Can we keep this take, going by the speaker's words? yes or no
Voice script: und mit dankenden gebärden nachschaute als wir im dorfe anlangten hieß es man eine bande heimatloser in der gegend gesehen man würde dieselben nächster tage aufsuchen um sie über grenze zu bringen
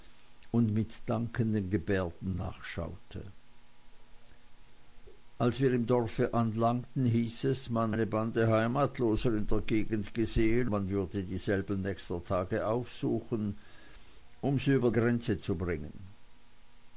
yes